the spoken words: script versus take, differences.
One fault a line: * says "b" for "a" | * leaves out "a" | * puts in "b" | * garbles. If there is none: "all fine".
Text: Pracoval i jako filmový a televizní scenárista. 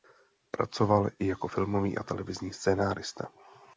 all fine